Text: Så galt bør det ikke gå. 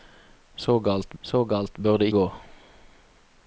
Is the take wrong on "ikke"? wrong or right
wrong